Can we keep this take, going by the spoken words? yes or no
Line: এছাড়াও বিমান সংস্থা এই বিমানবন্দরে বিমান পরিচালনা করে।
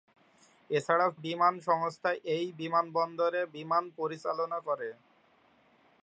yes